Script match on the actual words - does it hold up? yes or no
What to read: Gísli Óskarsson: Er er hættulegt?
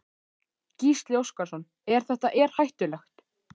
no